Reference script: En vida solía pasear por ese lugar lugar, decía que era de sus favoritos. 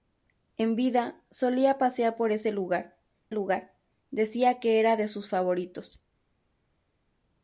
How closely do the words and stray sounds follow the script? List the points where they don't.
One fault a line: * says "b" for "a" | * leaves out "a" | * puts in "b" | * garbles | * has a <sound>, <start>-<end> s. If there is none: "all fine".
all fine